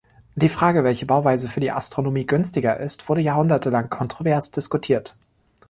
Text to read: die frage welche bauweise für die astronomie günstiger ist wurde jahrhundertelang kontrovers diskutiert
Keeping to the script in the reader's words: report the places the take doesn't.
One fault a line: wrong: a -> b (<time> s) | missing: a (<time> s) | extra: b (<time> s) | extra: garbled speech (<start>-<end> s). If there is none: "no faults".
no faults